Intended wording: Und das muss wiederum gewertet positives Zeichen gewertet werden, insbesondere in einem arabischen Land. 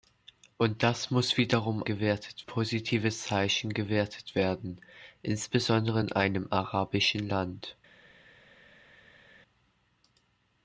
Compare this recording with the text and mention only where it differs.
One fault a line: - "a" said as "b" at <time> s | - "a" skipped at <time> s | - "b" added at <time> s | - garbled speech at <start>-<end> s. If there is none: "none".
none